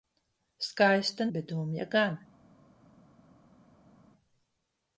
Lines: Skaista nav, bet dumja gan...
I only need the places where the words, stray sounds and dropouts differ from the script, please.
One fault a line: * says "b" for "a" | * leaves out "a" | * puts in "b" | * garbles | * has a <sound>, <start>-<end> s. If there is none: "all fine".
* leaves out "nav"